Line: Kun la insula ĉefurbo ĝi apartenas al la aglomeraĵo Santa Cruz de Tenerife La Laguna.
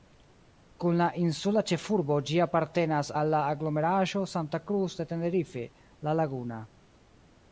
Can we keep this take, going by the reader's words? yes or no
yes